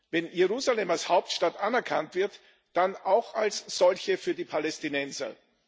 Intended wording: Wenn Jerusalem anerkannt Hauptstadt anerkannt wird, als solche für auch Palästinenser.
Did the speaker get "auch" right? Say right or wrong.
wrong